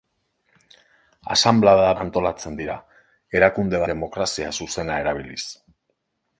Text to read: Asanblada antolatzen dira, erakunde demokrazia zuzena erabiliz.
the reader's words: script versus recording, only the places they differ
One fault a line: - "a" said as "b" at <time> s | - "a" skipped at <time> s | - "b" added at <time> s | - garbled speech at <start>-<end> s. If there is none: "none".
none